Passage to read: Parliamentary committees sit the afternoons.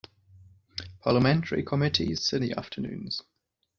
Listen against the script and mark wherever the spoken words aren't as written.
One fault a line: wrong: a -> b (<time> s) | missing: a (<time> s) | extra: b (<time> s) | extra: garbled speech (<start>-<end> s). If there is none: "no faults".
no faults